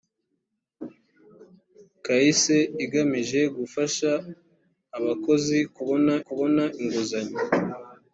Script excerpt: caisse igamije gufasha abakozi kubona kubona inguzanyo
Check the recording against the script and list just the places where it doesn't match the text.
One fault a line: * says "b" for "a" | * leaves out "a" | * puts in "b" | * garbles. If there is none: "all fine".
all fine